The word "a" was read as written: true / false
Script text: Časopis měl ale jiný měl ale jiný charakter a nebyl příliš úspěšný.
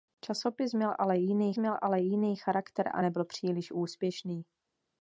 true